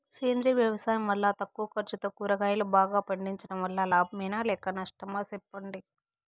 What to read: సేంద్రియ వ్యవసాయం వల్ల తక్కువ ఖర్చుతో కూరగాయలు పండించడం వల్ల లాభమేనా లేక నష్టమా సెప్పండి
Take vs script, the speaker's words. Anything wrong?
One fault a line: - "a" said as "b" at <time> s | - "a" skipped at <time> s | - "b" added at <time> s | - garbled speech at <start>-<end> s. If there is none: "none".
- "బాగా" added at 2.7 s